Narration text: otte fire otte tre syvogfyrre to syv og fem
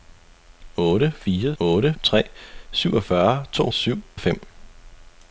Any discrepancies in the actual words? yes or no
no